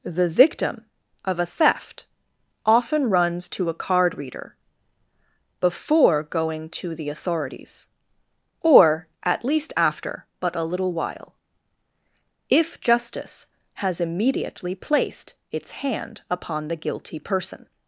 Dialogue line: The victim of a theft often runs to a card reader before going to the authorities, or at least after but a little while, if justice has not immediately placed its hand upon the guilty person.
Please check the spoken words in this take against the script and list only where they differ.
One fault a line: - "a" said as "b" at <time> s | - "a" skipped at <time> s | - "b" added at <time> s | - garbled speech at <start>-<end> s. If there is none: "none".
- "not" skipped at 14.0 s